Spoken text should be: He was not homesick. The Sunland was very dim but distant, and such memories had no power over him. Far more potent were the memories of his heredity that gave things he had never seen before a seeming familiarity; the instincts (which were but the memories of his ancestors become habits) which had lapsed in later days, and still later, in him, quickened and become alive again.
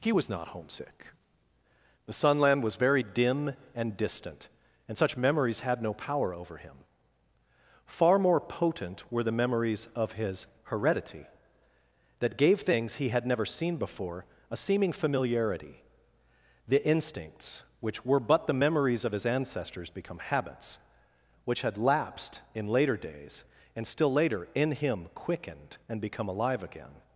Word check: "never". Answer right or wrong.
right